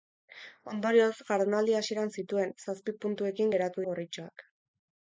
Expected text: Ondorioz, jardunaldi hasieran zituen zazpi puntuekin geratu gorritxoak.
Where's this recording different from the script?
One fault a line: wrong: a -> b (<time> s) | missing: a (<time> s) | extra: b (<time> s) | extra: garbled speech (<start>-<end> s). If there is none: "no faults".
no faults